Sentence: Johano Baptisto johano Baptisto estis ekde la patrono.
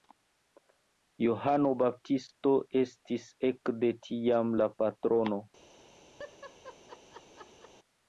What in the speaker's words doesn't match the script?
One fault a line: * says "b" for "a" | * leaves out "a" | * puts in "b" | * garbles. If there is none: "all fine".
* leaves out "johano Baptisto"
* puts in "tiam"